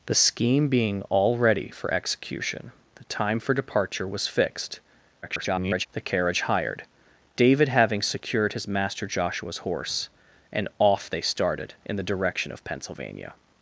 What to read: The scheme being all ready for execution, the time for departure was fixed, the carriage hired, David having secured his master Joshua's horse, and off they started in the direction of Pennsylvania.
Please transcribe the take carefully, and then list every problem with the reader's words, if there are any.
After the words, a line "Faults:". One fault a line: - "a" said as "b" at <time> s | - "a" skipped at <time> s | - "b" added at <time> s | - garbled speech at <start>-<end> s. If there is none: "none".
The scheme being all ready for execution, the time for departure was fixed, [garbled] the carriage hired, David having secured his master Joshua's horse, and off they started in the direction of Pennsylvania.
Faults:
- garbled speech at 5.2-5.9 s